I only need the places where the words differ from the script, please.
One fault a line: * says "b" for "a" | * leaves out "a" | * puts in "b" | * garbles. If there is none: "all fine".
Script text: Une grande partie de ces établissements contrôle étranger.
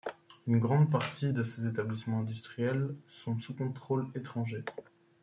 * puts in "industriels sont sous"